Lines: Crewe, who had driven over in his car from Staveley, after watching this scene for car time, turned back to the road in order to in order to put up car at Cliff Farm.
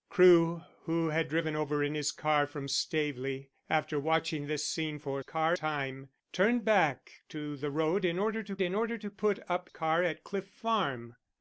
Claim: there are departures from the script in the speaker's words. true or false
false